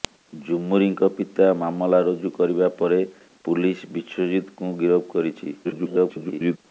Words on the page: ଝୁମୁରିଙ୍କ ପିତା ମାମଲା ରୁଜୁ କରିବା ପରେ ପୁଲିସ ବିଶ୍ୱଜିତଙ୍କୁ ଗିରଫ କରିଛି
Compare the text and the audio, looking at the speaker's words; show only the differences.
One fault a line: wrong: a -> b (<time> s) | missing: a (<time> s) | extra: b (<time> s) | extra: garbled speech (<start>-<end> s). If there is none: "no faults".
extra: garbled speech (5.6-6.6 s)